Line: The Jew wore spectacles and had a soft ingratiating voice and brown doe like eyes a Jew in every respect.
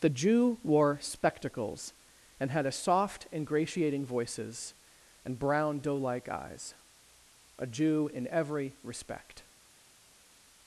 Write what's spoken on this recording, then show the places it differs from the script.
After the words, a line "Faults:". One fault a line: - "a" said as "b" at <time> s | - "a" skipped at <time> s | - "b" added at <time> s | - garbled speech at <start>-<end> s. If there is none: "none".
The Jew wore spectacles and had a soft ingratiating voices and brown doe like eyes a Jew in every respect.
Faults:
- "voice" said as "voices" at 4.0 s